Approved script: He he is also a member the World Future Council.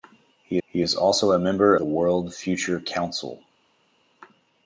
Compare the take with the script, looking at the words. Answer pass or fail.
pass